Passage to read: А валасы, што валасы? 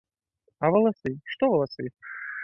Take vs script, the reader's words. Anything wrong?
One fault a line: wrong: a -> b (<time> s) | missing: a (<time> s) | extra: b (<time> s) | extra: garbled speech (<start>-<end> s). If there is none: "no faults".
no faults